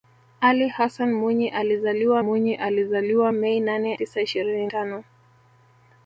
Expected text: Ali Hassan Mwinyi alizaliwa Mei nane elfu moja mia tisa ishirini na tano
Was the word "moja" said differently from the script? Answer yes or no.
yes